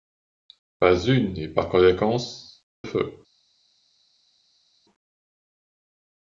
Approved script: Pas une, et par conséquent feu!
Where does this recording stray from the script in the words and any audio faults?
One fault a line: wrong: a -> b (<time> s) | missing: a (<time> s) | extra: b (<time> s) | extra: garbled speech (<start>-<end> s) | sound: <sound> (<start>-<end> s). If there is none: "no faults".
no faults